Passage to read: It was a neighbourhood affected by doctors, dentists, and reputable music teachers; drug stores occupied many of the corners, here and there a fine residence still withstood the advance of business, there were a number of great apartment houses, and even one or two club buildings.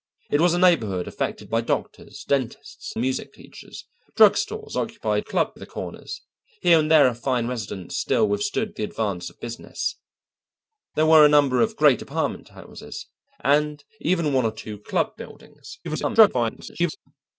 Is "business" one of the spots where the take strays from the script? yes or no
no